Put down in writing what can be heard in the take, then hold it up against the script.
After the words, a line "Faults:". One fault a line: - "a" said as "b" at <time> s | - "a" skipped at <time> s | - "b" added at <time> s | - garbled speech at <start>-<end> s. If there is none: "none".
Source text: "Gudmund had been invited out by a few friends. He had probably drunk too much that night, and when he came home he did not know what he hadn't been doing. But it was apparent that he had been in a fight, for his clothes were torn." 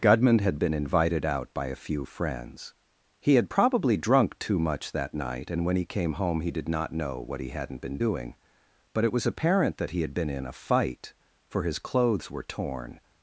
"Gudmund had been invited out by a few friends. He had probably drunk too much that night, and when he came home he did not know what he hadn't been doing. But it was apparent that he had been in a fight, for his clothes were torn."
Faults:
none